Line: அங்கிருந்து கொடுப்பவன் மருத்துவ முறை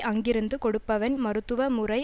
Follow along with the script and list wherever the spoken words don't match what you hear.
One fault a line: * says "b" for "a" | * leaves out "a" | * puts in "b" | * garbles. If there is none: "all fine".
all fine